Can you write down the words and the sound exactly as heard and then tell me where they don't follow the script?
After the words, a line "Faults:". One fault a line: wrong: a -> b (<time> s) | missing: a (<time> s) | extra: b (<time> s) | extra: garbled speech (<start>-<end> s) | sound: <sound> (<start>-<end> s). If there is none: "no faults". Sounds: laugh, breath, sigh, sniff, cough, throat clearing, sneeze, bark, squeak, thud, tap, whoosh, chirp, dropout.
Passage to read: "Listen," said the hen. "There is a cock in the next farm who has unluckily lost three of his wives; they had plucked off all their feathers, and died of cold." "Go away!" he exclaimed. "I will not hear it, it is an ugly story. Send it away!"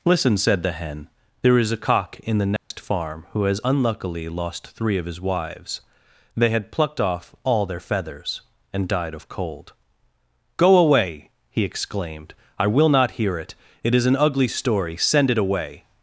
"Listen," said the hen. "There is a cock in the next farm who has unluckily lost three of his wives; they had plucked off all their feathers, and died of cold." "Go away!" he exclaimed. "I will not hear it, it is an ugly story. Send it away!"
Faults:
sound: dropout (2.6-2.7 s)